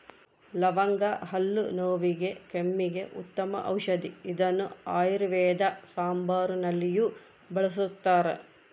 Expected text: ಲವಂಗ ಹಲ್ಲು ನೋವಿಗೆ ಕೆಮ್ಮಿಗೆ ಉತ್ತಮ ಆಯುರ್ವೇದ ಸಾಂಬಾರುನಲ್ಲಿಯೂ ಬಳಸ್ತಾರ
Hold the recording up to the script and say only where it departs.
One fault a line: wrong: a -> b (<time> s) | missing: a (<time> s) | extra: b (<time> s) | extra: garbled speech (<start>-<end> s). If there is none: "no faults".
extra: ಔಷದಿ ಇದನ್ನು (3.7 s)